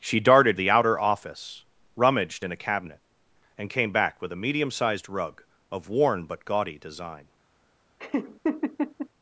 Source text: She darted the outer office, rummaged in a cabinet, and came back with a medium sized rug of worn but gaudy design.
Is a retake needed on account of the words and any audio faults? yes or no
yes